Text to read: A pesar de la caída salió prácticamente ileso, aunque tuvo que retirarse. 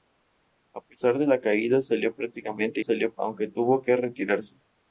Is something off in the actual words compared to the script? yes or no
yes